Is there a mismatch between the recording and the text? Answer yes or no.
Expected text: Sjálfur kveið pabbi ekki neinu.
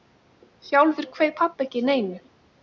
no